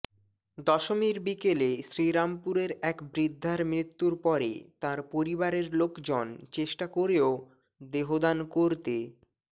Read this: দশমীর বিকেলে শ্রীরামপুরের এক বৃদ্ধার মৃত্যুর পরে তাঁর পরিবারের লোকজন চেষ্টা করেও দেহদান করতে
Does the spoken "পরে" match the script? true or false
true